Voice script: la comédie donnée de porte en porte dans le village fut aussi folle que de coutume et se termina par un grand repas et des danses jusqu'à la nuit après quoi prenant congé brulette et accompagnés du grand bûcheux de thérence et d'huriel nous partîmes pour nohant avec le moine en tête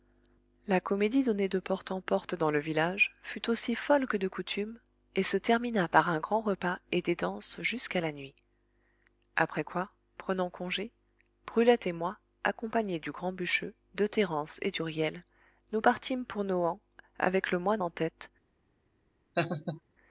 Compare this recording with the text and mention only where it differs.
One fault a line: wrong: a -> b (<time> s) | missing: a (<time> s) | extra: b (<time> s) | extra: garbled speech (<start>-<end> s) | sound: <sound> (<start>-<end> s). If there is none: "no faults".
extra: moi (11.9 s)
sound: laugh (19.3-19.8 s)